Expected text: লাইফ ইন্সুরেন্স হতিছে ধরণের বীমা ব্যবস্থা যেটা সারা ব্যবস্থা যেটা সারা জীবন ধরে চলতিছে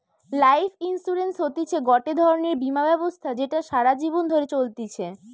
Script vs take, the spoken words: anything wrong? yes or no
yes